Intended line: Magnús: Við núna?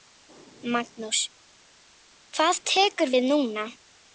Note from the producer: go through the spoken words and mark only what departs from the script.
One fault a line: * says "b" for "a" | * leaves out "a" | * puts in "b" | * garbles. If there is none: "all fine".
* puts in "Hvað tekur"